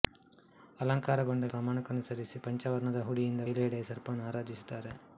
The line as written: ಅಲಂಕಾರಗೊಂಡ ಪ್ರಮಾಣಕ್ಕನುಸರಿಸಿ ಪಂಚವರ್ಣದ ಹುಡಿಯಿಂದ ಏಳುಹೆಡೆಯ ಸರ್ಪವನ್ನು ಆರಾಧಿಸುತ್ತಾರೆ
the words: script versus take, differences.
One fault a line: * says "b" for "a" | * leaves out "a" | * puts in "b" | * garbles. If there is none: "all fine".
all fine